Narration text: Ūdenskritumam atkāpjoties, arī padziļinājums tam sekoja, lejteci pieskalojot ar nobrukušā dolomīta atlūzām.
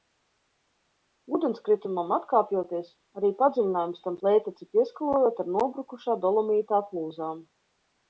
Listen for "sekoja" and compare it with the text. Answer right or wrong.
wrong